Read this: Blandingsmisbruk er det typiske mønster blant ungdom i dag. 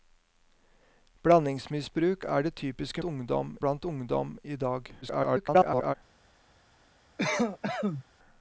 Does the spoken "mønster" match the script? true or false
false